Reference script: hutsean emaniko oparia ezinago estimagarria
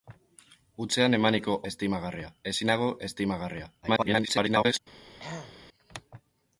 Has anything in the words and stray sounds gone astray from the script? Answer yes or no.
yes